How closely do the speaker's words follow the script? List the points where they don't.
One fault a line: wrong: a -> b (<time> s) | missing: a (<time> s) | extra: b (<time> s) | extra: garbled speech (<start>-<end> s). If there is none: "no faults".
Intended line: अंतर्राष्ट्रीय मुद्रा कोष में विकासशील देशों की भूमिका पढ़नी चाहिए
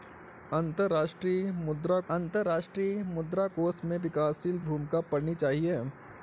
extra: अंतर्राष्ट्रीय मुद्रा (2.1 s)
missing: देशों की (4.6 s)